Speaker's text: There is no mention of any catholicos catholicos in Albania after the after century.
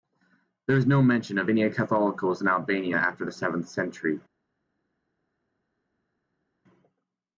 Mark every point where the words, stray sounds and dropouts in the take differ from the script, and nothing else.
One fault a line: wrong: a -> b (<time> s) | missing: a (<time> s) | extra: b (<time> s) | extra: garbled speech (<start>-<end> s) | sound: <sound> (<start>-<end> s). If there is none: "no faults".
missing: catholicos (2.4 s)
wrong: after -> seventh (3.3 s)